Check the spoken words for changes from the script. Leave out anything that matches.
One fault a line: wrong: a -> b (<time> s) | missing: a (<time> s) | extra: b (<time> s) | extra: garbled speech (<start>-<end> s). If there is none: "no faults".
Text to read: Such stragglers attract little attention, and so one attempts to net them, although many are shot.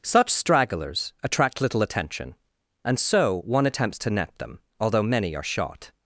no faults